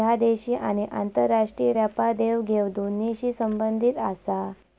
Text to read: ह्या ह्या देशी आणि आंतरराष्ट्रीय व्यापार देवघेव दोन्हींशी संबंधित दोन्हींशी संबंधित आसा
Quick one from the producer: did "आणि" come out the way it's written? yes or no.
yes